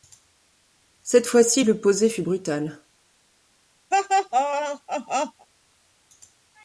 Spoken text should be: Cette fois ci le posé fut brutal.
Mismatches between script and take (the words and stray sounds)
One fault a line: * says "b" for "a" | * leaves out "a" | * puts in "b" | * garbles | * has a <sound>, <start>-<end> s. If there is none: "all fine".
* has a laugh, 3.9-5.5 s